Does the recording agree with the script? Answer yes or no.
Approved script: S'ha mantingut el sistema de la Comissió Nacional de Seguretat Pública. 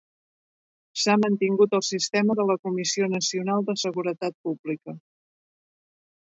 yes